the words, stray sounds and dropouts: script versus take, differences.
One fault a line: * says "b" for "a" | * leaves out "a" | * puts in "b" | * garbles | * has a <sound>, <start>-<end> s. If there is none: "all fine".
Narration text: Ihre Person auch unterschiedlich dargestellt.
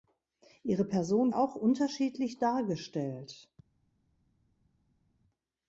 all fine